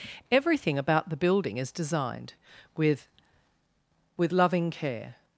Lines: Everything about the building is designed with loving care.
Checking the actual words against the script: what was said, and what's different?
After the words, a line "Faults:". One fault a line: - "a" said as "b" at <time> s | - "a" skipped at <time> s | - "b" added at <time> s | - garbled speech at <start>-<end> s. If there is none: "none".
Everything about the building is designed with with loving care.
Faults:
- "with" added at 4.2 s